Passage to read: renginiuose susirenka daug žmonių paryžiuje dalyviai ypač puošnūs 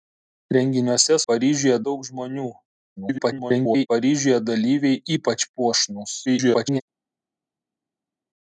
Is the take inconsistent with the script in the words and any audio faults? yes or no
yes